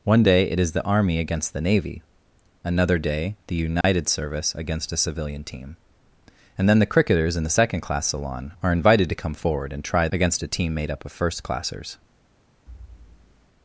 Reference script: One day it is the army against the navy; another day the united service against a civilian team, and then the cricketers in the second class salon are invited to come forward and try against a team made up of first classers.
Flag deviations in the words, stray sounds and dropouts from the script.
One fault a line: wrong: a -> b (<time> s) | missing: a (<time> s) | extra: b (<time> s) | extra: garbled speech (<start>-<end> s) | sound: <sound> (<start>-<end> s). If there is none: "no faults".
sound: dropout (3.8-3.8 s)
sound: thud (12.7-13.5 s)